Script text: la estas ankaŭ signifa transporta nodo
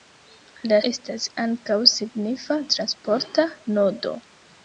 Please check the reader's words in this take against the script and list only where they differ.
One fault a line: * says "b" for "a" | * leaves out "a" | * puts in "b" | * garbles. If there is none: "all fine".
all fine